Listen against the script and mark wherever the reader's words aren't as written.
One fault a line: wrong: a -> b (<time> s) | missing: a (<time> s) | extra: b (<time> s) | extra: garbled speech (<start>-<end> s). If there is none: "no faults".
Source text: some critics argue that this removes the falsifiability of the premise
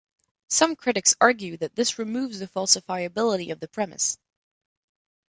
no faults